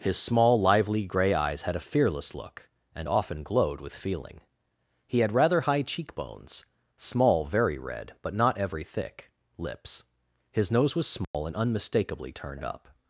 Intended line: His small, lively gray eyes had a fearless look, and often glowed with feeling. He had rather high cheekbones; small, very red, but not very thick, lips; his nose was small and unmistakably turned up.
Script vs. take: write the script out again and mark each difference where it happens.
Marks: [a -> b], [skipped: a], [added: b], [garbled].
His small, lively gray eyes had a fearless look, and often glowed with feeling. He had rather high cheekbones; small, very red, but not [very -> every] thick, lips; his nose was small and unmistakably turned up.